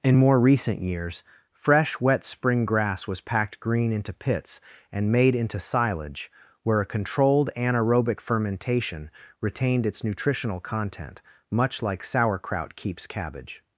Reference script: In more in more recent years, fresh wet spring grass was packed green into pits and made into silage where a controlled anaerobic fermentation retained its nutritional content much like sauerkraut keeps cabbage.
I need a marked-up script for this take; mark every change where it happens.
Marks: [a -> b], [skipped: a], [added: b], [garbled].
In more [skipped: in more] recent years, fresh wet spring grass was packed green into pits and made into silage where a controlled anaerobic fermentation retained its nutritional content much like sauerkraut keeps cabbage.